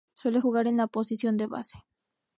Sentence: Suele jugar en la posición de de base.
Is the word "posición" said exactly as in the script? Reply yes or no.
yes